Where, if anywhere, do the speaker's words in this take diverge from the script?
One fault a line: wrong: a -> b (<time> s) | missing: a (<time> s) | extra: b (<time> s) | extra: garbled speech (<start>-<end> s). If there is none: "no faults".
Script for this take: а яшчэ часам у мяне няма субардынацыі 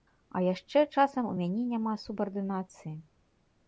no faults